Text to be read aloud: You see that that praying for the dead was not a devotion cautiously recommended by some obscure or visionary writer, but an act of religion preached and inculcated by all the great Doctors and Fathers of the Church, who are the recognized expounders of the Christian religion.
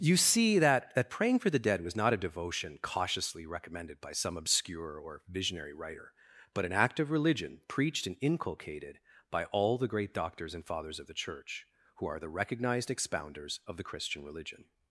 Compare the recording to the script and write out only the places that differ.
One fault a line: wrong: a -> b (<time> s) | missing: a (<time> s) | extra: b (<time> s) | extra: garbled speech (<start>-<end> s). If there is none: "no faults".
no faults